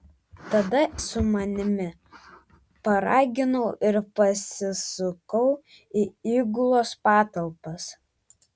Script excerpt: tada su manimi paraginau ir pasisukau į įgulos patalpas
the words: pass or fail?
pass